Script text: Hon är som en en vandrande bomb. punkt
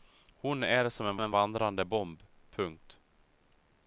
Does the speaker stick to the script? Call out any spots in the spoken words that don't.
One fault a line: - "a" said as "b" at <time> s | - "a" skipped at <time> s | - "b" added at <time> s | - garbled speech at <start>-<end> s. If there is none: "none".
none